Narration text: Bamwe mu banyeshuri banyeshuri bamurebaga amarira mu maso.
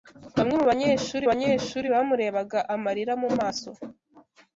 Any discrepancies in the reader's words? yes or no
no